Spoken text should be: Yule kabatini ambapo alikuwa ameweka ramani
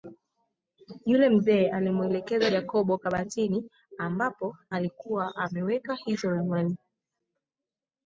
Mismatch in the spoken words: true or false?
true